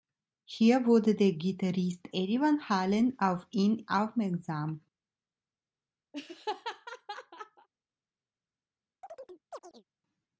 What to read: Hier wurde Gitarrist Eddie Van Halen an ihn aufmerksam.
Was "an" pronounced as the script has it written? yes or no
no